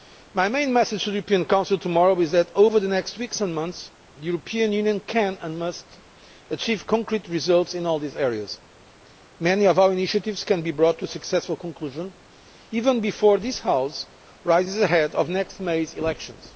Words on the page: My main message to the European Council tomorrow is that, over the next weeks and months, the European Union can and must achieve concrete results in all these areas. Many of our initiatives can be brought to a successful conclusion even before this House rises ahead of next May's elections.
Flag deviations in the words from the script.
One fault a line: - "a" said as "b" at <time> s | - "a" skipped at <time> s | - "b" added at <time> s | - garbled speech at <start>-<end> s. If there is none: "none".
none